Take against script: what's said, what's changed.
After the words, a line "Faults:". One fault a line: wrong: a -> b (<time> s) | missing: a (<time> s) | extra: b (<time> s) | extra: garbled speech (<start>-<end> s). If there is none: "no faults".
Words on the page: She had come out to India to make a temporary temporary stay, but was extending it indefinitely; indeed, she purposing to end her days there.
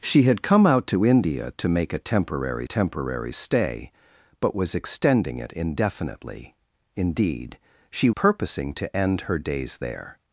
She had come out to India to make a temporary temporary stay, but was extending it indefinitely; indeed, she purposing to end her days there.
Faults:
no faults